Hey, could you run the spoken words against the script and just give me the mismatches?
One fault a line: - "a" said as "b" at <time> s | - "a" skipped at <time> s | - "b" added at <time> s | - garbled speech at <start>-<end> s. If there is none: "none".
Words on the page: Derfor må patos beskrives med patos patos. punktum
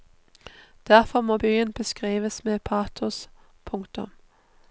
- "patos" said as "byen" at 1.3 s
- "patos" skipped at 3.3 s